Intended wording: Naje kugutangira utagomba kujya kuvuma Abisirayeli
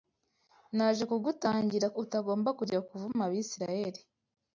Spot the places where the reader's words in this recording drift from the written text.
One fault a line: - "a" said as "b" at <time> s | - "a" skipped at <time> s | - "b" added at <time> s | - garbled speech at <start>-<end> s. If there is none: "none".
none